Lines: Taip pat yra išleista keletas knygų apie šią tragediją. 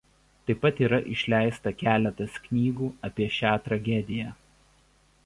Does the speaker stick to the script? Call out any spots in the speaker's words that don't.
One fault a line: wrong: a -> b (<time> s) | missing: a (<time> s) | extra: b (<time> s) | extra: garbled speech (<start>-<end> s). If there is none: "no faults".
no faults